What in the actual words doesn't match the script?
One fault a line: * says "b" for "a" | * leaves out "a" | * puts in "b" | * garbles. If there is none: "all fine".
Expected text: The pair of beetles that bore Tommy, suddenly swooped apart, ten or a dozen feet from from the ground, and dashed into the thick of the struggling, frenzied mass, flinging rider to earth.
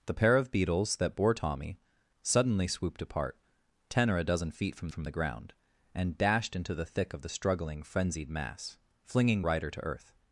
all fine